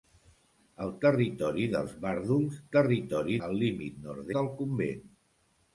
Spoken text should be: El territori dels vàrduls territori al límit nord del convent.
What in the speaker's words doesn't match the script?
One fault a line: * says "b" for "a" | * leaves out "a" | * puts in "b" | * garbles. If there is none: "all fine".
all fine